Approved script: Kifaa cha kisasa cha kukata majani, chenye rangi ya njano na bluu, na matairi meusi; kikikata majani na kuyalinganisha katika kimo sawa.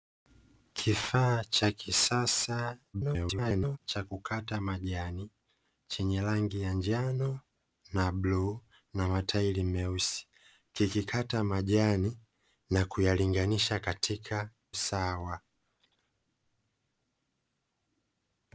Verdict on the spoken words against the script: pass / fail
fail